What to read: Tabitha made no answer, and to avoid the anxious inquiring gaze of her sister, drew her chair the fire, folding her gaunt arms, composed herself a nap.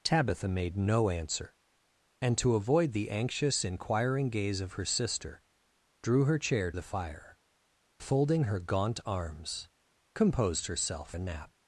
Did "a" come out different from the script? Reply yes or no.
no